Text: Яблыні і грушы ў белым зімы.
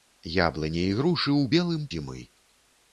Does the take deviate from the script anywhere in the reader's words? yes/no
no